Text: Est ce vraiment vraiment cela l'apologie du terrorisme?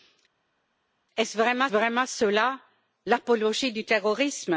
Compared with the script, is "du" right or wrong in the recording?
right